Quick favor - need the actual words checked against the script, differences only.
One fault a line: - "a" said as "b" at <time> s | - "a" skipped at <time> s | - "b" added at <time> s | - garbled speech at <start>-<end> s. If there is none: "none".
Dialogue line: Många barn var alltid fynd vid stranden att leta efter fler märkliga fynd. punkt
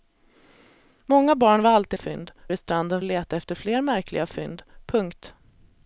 none